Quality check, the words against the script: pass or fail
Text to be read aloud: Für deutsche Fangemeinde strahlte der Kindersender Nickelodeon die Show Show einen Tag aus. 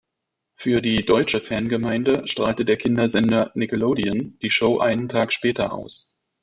fail